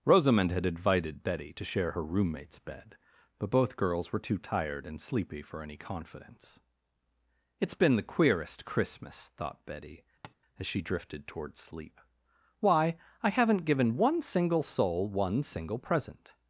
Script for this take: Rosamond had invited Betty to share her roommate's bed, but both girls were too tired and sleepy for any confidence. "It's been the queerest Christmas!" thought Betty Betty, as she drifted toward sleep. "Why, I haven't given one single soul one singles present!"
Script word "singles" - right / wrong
wrong